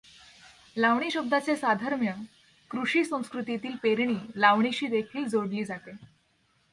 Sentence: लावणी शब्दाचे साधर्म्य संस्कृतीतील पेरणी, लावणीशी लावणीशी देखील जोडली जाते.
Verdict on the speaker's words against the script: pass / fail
fail